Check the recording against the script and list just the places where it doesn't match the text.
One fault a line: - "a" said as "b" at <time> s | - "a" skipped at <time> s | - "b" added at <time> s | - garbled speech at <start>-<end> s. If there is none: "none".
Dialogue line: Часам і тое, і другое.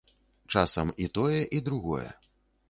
none